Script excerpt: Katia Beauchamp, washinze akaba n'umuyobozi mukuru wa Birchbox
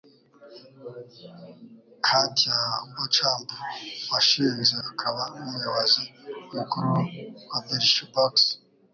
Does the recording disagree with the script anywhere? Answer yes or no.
no